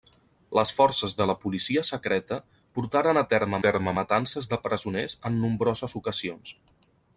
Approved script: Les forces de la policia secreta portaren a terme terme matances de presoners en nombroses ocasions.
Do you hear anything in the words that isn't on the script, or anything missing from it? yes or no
no